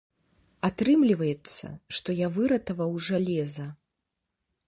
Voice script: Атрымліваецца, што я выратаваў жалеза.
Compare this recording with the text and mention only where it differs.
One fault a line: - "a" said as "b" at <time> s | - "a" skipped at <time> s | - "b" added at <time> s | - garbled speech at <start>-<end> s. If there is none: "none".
none